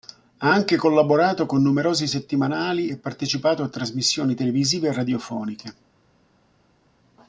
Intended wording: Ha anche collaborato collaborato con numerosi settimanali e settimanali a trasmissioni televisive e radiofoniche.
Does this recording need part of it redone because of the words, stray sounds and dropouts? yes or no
yes